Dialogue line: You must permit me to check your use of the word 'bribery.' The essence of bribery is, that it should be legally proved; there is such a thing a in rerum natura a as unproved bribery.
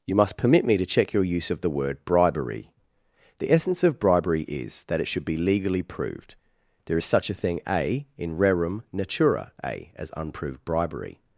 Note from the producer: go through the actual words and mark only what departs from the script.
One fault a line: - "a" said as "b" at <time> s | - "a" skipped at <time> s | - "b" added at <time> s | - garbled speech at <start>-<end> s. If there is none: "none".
none